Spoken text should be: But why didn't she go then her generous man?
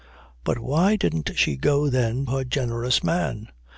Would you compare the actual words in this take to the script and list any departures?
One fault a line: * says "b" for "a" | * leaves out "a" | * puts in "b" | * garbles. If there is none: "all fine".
all fine